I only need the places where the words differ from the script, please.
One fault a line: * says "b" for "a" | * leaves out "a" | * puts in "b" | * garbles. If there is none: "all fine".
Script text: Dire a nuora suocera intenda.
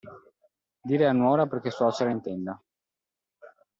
* puts in "perché"